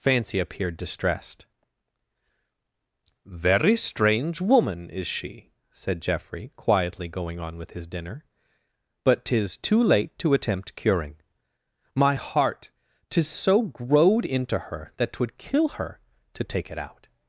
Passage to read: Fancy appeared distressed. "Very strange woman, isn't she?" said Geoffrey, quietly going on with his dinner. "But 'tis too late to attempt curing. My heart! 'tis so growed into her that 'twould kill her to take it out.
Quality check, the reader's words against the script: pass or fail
fail